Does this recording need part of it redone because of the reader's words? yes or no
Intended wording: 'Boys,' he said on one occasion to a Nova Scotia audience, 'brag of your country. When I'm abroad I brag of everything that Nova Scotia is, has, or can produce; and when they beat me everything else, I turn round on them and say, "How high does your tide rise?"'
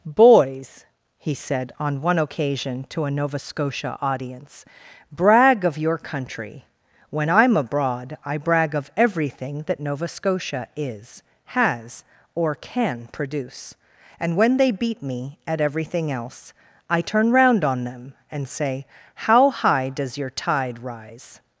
yes